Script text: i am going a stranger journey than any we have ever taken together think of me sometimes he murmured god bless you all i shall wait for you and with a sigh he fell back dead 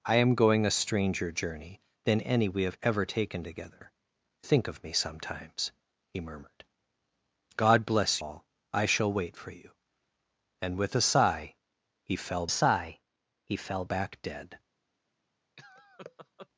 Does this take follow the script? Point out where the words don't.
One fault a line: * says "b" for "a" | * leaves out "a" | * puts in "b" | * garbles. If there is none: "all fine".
* leaves out "you"
* puts in "sigh he fell"